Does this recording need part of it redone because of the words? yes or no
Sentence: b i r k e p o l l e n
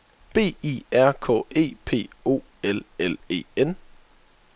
no